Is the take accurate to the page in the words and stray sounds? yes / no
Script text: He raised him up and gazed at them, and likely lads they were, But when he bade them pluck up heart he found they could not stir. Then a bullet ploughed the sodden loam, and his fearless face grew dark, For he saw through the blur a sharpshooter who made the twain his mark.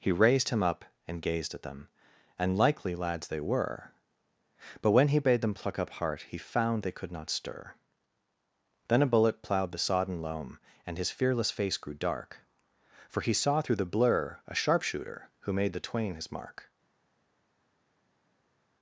yes